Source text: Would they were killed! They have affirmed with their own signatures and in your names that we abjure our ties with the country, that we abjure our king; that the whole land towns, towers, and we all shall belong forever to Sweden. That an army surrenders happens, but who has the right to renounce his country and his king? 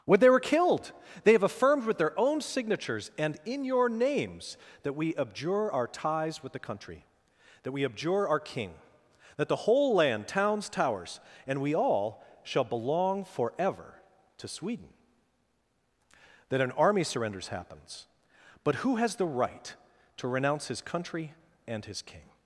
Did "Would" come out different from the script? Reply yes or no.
yes